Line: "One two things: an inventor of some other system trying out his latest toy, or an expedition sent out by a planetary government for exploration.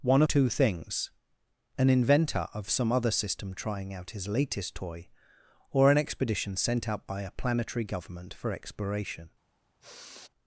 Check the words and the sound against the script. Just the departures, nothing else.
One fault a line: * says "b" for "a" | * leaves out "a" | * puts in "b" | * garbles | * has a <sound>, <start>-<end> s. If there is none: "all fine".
* has a sigh, 9.8-10.3 s